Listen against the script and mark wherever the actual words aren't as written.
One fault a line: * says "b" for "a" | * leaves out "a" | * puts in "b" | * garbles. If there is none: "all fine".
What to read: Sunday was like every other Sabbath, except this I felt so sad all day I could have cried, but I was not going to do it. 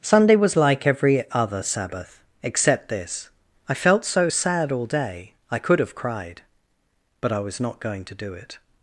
all fine